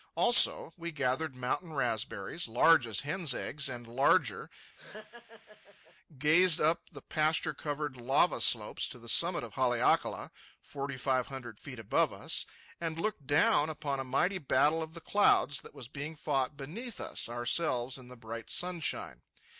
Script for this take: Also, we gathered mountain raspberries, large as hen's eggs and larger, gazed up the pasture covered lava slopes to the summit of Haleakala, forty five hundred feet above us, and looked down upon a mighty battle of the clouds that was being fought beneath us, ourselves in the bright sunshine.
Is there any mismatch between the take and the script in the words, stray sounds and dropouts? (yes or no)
yes